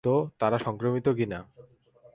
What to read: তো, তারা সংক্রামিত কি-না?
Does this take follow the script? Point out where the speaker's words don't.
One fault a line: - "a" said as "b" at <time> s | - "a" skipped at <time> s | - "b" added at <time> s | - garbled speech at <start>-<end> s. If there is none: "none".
none